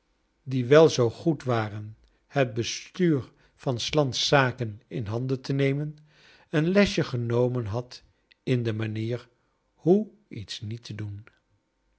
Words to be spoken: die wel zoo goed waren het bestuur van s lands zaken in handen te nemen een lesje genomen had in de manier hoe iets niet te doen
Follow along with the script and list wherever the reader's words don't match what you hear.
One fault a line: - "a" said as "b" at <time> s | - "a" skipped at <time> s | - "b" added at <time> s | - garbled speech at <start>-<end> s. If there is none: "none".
none